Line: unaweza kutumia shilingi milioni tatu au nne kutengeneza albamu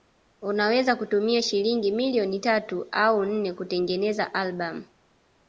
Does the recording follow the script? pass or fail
pass